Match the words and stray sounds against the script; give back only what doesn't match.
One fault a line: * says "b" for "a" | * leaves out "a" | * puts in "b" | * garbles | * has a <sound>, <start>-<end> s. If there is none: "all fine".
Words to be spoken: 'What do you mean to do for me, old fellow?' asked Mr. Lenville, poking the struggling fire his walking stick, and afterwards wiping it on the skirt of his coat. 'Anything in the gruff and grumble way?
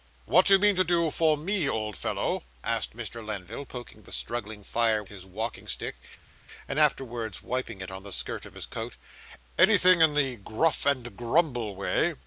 all fine